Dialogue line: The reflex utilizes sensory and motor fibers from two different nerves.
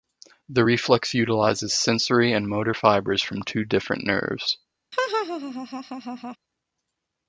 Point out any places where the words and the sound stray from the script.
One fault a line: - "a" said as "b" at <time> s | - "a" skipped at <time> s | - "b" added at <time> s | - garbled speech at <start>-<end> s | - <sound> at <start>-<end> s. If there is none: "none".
- laugh at 4.9-6.4 s